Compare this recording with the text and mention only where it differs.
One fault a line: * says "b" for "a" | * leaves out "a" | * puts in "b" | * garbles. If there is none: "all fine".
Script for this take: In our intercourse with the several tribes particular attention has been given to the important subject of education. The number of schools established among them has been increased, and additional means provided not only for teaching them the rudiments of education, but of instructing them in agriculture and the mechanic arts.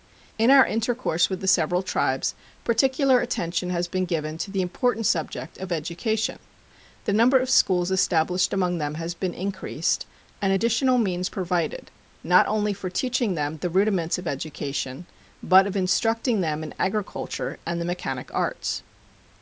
all fine